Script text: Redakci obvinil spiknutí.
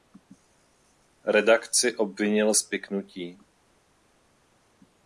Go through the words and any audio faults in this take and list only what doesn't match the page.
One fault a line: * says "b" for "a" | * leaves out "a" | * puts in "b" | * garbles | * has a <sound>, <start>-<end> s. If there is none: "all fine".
all fine